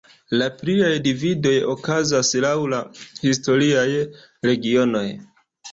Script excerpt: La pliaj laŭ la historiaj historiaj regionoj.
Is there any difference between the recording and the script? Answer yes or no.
yes